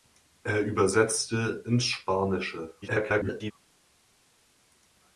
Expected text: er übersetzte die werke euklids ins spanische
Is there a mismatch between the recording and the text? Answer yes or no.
yes